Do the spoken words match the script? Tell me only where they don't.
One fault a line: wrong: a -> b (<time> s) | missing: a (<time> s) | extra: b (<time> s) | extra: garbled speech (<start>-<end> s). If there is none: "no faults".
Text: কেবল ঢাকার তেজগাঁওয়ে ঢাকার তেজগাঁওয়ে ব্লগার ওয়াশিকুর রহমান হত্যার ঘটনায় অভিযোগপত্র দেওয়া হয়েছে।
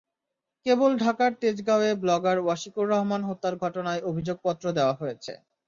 missing: ঢাকার তেজগাঁওয়ে (1.9 s)